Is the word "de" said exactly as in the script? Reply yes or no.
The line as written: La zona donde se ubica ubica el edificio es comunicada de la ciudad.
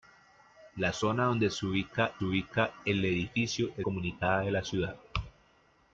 yes